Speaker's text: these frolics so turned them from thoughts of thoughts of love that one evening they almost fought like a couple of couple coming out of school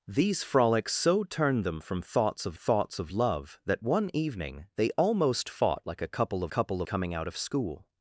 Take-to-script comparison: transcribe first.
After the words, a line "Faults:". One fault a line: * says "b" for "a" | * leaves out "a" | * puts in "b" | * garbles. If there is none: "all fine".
these frolics so turned them from thoughts of thoughts of love that one evening they almost fought like a couple of couple coming out of school
Faults:
all fine